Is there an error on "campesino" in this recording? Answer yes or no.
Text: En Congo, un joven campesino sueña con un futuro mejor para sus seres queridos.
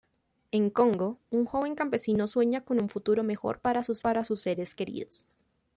no